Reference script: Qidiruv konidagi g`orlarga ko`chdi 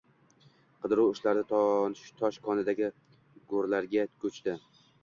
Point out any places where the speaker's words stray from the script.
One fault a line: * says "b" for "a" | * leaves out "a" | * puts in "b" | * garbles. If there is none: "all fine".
* puts in "ishlari tosh"